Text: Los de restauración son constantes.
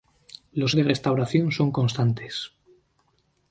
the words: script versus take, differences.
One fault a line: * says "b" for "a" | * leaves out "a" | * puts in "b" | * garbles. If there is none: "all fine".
all fine